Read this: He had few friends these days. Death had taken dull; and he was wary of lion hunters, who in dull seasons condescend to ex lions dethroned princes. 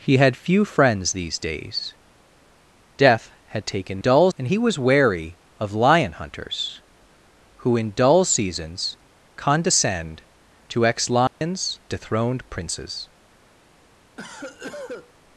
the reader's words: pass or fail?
pass